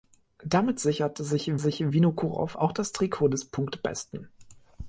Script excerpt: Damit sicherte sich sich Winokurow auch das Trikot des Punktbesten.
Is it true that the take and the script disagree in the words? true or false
false